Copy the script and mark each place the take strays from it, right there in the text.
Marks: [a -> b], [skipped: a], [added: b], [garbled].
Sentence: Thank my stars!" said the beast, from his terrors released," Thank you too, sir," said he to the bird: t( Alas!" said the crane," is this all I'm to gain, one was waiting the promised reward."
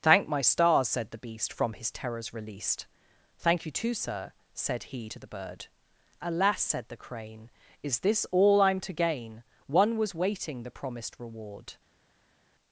Thank my stars!" said the beast, from his terrors released," Thank you too, sir," said he to the bird: [skipped: t(] Alas!" said the crane," is this all I'm to gain, one was waiting the promised reward."